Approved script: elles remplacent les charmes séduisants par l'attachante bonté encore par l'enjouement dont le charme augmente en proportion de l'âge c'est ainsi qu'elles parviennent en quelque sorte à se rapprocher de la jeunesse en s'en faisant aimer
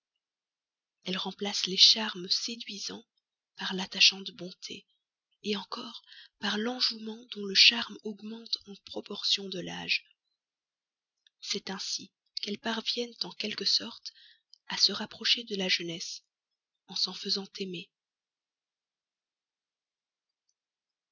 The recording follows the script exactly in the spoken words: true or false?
true